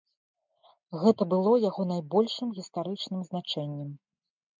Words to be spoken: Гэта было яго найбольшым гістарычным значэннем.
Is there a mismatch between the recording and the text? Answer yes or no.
no